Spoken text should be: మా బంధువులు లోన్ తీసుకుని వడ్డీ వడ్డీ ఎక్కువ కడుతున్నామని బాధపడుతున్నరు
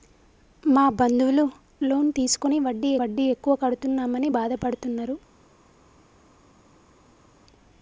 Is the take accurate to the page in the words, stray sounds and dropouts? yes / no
yes